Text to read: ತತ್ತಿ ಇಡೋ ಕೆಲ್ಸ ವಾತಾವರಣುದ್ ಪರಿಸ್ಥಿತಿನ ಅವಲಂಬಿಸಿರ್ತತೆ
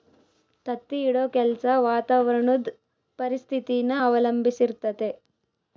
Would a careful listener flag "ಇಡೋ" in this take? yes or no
no